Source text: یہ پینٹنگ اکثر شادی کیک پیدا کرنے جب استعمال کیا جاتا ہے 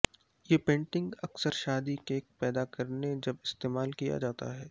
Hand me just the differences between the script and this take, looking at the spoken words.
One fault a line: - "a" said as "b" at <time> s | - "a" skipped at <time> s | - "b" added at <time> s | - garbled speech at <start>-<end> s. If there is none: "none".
none